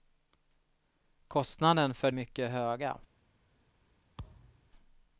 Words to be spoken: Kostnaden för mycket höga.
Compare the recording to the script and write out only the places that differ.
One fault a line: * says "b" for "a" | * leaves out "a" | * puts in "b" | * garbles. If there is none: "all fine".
all fine